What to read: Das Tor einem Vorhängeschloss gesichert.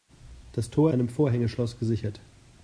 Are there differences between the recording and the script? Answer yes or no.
no